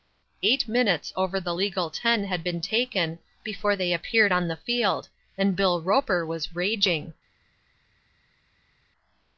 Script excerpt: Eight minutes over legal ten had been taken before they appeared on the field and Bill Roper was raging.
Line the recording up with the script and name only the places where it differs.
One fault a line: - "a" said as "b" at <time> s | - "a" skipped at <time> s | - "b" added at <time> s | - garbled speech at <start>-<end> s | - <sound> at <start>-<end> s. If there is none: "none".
- "the" added at 1.4 s